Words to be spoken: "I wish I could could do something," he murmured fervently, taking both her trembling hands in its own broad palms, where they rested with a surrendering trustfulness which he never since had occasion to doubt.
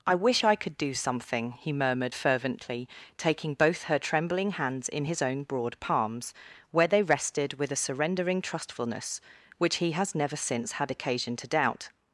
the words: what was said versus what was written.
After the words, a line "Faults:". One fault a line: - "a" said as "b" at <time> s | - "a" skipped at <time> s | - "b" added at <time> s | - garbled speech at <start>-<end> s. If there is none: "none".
"I wish I could do something," he murmured fervently, taking both her trembling hands in his own broad palms, where they rested with a surrendering trustfulness which he has never since had occasion to doubt.
Faults:
- "could" skipped at 0.8 s
- "its" said as "his" at 5.0 s
- "has" added at 9.9 s